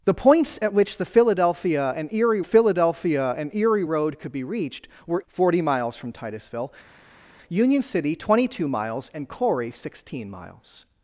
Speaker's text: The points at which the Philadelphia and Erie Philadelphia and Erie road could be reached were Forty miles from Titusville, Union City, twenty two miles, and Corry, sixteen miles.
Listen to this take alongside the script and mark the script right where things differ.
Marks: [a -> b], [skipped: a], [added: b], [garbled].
The points at which the Philadelphia and Erie Philadelphia and Erie road could be reached were Forty miles from Titusville, Union City, twenty two miles, and Corry, sixteen miles.